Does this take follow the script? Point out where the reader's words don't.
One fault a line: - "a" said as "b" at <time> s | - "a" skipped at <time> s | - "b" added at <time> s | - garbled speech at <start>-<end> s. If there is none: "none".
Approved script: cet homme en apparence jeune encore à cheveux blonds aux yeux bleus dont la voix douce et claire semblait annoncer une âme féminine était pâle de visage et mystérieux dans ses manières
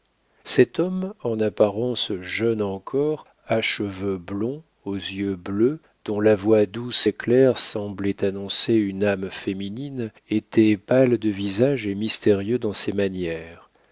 none